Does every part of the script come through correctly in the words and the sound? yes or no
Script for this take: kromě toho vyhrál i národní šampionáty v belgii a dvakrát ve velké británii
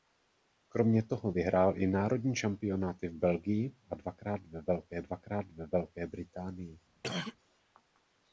no